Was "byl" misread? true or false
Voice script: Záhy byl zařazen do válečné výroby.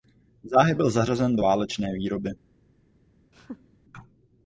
false